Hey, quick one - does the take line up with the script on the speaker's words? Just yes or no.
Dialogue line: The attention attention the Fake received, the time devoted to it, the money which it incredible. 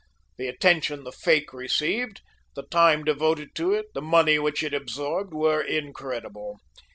no